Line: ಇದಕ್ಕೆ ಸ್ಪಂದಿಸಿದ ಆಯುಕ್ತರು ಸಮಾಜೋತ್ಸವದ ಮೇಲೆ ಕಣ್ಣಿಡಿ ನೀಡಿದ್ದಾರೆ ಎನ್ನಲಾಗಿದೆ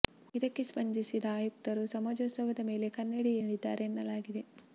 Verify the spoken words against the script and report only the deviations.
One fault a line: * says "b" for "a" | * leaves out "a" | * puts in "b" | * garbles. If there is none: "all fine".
all fine